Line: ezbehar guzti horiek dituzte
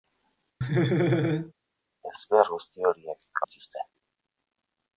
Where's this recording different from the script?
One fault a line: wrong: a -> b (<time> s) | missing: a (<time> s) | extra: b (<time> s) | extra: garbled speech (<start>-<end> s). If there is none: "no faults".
no faults